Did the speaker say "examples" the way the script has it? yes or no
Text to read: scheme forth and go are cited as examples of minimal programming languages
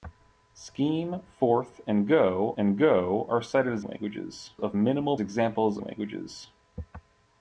no